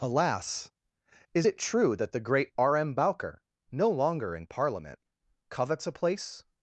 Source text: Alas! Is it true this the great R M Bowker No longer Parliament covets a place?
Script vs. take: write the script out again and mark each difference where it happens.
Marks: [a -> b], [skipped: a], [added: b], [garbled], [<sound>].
Alas! Is it true [this -> that] the great R M Bowker No longer [added: in] Parliament covets a place?